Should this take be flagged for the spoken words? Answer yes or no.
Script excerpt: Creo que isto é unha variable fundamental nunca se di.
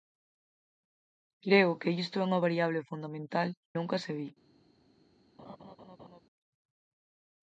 no